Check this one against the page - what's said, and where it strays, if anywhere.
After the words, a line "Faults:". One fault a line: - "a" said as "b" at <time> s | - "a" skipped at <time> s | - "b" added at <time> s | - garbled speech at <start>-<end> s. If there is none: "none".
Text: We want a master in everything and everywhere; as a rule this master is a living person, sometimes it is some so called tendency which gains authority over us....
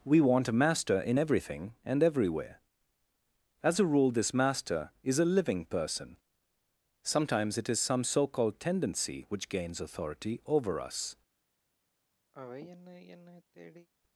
We want a master in everything and everywhere; as a rule this master is a living person, sometimes it is some so called tendency which gains authority over us....
Faults:
none